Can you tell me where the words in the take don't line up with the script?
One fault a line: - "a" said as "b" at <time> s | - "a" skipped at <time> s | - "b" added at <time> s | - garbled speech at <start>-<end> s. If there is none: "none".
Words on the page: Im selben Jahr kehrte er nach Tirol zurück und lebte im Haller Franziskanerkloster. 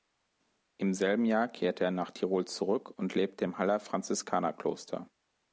none